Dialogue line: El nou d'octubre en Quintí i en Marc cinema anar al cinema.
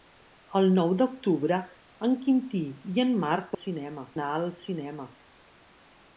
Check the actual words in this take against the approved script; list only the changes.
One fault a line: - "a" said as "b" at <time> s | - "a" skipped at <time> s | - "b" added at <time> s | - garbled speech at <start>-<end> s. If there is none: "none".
none